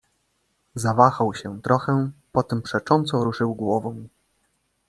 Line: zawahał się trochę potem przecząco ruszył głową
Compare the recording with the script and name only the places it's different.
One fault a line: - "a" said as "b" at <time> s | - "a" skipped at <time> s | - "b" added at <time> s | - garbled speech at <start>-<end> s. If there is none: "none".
none